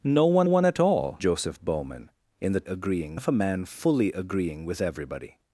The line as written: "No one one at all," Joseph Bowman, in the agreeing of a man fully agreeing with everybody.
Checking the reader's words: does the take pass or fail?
pass